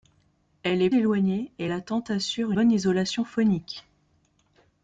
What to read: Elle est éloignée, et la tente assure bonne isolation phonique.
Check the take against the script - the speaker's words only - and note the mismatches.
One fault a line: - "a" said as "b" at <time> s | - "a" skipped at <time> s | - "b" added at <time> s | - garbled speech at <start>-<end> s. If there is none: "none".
none